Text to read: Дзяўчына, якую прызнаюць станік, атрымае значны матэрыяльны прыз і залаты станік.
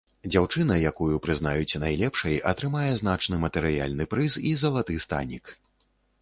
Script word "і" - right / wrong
right